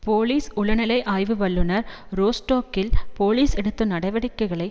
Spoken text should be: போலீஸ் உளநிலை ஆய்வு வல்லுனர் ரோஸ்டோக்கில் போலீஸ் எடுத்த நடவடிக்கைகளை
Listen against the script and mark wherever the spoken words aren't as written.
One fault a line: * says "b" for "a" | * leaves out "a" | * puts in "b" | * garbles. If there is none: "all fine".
all fine